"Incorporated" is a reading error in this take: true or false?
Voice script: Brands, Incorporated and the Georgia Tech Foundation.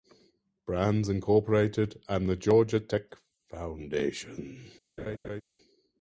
false